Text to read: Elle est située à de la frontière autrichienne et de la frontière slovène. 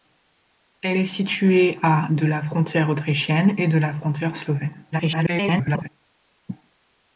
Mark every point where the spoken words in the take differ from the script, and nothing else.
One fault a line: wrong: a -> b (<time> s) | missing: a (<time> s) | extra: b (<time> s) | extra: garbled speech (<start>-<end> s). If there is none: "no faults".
extra: garbled speech (4.9-5.9 s)